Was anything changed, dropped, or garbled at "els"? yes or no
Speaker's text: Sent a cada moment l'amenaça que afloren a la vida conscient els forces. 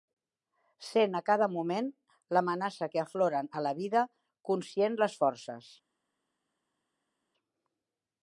yes